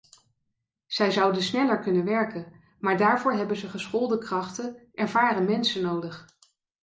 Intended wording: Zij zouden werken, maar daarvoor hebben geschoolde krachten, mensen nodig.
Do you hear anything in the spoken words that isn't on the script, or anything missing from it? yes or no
yes